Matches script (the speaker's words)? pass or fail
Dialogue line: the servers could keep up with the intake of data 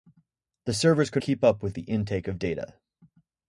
pass